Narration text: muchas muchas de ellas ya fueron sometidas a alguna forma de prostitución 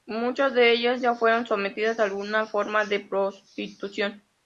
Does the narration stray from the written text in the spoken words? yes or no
yes